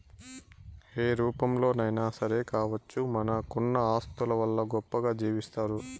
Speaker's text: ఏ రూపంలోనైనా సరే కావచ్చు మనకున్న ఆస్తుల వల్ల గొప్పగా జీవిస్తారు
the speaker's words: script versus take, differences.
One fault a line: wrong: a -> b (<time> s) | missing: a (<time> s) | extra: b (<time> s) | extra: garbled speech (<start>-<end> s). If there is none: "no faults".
no faults